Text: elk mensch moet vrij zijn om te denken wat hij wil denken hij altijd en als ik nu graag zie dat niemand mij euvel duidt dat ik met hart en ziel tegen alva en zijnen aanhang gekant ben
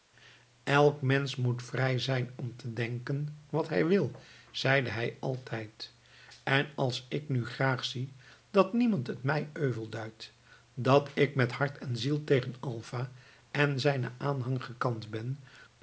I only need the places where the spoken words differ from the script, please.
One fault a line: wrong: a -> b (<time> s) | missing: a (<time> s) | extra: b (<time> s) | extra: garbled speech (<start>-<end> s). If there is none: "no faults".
wrong: denken -> zeide (4.5 s)
extra: het (9.1 s)